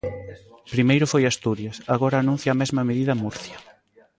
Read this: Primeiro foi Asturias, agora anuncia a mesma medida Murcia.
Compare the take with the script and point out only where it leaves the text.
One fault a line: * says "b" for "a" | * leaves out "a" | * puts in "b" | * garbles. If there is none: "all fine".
all fine